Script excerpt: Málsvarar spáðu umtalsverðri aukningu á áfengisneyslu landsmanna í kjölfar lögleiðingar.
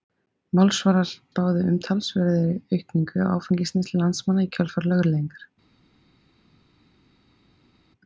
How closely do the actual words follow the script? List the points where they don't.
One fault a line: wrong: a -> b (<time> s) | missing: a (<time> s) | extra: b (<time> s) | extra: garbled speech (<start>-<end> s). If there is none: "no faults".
no faults